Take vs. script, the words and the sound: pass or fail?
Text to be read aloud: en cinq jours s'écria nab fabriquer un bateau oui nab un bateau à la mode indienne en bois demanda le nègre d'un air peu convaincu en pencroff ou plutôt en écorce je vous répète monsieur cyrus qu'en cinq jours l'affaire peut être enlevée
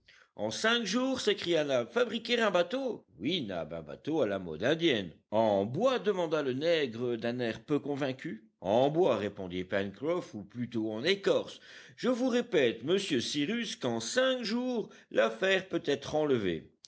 fail